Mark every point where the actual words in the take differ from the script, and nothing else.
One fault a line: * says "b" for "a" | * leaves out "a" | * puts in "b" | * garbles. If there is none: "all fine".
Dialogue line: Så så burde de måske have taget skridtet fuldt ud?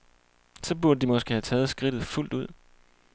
* leaves out "så"